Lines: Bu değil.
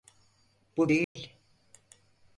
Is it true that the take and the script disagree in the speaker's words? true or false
false